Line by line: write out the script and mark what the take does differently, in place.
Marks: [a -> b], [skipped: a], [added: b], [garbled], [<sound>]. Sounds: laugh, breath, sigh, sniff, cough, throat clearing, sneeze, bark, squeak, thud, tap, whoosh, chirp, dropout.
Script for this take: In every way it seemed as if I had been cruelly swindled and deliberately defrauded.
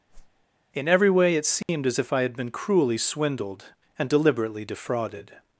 [whoosh] In every way it seemed [dropout] as if I had been cruelly swindled and deliberately defrauded.